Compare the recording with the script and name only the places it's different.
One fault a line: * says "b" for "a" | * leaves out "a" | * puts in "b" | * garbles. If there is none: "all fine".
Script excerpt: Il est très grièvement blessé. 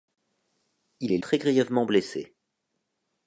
all fine